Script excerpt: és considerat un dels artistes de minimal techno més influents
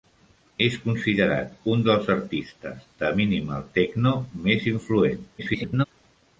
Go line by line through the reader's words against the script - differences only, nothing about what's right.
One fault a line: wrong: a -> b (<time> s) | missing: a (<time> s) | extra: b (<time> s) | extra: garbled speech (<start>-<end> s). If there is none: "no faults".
extra: garbled speech (5.4-5.9 s)